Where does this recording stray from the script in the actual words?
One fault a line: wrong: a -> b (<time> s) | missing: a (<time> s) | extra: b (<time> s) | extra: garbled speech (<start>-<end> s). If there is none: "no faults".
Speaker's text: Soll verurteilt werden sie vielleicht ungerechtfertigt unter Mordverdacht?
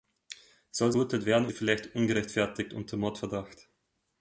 no faults